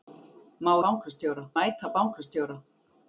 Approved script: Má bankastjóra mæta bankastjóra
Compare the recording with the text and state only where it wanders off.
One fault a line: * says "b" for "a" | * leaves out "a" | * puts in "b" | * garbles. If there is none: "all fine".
all fine